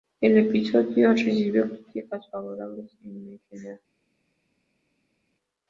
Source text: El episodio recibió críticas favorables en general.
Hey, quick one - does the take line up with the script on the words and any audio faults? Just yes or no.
yes